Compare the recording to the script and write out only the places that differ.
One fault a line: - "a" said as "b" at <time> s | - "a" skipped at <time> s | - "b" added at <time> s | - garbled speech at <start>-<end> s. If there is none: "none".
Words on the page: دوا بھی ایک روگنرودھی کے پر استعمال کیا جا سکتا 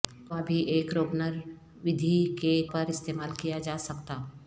none